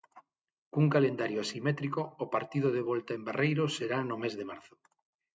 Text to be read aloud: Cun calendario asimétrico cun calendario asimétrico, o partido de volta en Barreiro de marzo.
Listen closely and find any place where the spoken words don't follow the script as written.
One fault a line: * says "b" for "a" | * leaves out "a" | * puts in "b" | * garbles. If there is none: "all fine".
* leaves out "cun calendario asimétrico"
* puts in "será no mes"